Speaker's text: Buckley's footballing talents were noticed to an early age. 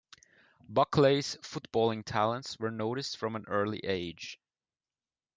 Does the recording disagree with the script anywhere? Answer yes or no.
yes